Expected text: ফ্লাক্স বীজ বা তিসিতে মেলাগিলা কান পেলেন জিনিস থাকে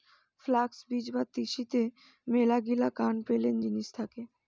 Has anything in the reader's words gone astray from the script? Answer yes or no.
no